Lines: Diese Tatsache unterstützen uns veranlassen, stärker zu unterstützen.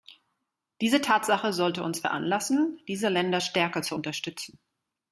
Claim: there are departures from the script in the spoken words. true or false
true